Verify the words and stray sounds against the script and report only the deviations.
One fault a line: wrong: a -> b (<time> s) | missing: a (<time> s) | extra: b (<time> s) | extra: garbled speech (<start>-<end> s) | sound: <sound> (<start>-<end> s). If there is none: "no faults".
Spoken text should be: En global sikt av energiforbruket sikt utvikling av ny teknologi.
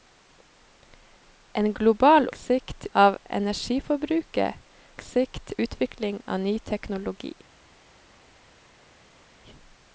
no faults